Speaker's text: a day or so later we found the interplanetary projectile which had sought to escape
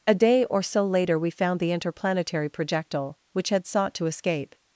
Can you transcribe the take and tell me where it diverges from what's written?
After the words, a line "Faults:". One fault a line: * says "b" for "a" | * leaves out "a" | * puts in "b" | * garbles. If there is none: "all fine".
a day or so later we found the interplanetary projectile which had sought to escape
Faults:
all fine